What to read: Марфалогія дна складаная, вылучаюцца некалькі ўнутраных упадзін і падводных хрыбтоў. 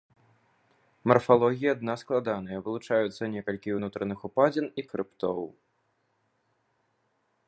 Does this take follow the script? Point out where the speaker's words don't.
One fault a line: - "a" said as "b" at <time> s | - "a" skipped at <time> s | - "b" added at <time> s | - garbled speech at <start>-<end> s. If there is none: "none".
- "падводных" skipped at 4.9 s